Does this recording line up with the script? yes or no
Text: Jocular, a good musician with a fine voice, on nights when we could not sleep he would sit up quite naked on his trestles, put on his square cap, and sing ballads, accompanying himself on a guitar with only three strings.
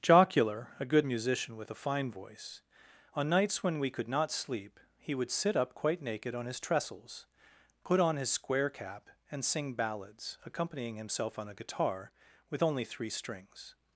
yes